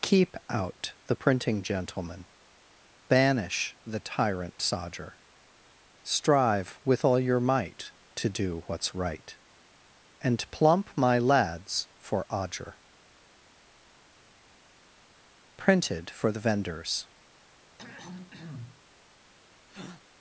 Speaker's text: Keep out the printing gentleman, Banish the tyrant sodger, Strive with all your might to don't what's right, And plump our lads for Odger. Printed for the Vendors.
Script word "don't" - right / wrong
wrong